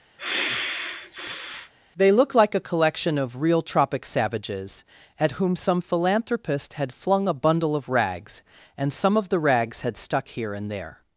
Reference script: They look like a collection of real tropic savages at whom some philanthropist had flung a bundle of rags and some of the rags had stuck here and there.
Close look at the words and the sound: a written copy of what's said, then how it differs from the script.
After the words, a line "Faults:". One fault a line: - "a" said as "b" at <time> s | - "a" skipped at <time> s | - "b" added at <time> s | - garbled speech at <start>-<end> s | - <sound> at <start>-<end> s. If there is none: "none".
They look like a collection of real tropic savages at whom some philanthropist had flung a bundle of rags and some of the rags had stuck here and there.
Faults:
- sigh at 0.2-1.7 s